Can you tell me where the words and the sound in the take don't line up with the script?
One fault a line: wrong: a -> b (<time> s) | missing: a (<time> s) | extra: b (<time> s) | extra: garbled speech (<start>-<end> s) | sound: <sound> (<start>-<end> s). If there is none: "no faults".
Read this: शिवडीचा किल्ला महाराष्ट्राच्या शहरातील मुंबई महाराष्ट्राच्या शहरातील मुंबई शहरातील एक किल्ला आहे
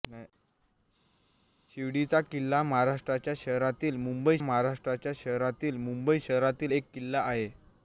no faults